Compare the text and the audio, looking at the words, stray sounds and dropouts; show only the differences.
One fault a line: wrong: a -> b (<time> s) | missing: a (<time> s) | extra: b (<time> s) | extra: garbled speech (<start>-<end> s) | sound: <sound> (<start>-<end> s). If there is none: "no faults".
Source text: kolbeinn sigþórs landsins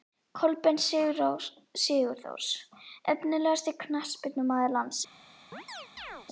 extra: efnilegasti knattspyrnumaður (3.1 s)
sound: chirp (5.5-6.3 s)